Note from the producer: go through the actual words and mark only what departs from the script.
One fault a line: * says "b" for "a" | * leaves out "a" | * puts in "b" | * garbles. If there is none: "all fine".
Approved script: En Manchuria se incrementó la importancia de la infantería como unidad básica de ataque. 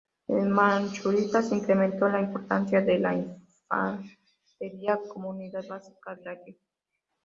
* leaves out "de"